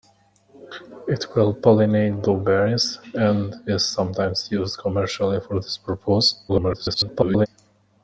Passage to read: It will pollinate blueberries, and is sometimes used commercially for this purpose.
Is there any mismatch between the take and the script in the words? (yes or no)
yes